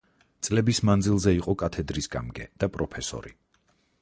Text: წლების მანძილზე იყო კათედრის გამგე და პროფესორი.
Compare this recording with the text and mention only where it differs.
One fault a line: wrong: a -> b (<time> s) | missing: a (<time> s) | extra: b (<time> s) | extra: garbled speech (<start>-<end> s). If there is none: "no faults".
no faults